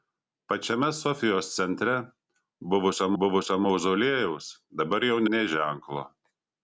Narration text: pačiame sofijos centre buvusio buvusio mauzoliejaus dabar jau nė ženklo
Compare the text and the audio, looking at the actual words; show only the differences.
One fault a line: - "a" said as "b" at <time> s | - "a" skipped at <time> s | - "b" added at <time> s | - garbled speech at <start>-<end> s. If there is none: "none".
none